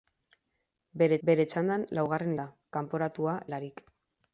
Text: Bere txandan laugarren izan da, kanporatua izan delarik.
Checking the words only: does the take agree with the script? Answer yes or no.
no